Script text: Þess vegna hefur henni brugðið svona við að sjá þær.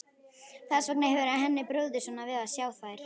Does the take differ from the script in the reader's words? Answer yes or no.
no